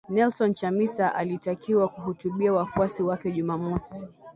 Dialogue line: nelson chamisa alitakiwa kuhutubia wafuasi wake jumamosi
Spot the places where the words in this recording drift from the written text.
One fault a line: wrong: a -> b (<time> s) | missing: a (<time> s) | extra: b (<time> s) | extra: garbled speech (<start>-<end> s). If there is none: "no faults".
no faults